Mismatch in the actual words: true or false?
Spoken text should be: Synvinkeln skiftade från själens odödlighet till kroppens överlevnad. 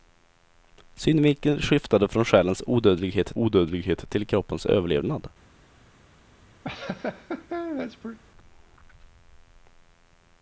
true